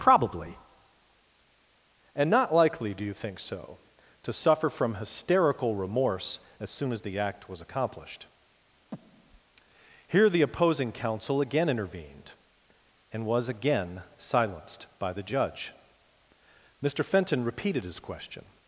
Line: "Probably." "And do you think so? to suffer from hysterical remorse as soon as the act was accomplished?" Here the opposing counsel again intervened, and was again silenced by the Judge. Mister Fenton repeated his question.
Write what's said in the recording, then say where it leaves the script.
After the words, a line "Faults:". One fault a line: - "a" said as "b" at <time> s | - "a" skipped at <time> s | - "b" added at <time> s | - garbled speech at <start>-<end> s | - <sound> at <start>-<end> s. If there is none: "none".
"Probably." "And not likely, do you think so? to suffer from hysterical remorse as soon as the act was accomplished?" Here the opposing counsel again intervened, and was again silenced by the Judge. Mister Fenton repeated his question.
Faults:
- "not likely" added at 2.3 s
- breath at 8.9-9.4 s